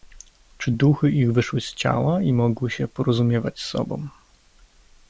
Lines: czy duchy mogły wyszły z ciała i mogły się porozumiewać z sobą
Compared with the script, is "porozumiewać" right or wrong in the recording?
right